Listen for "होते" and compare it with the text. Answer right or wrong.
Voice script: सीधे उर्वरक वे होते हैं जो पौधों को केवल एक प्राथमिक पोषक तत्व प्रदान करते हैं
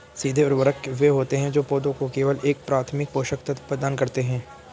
right